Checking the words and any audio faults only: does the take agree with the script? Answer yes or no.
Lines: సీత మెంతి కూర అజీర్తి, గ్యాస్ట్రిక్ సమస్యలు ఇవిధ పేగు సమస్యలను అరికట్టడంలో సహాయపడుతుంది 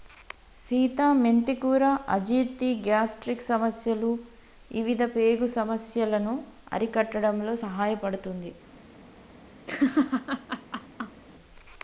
no